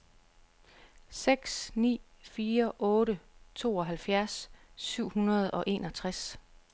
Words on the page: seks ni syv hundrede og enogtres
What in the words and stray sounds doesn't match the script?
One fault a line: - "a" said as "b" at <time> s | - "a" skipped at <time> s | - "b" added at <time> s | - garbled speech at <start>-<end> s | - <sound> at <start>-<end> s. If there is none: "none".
- "fire otte tooghalvfjerds" added at 2.2 s